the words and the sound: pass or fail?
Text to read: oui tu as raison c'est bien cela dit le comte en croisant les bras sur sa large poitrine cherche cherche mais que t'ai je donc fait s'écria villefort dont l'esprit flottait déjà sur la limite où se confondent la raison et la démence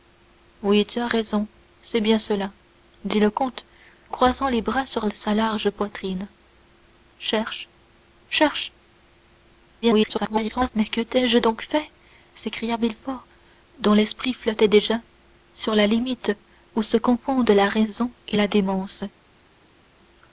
fail